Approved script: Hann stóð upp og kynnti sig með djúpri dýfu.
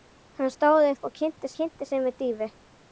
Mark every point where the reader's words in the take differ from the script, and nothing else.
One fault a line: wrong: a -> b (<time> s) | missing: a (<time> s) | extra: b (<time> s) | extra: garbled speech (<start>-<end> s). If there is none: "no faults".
extra: kynnti (1.6 s)
missing: djúpri (2.2 s)